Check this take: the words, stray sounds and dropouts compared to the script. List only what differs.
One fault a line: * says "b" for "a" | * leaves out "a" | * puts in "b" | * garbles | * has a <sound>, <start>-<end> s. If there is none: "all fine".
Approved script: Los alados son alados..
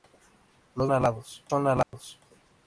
* has a dropout, 1.8-1.9 s